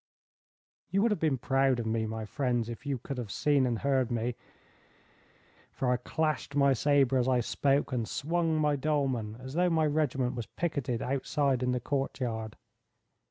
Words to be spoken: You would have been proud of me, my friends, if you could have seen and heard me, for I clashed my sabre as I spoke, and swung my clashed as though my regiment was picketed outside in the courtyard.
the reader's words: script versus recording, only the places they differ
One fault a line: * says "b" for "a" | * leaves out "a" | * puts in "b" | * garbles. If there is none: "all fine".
* says "dolman" for "clashed"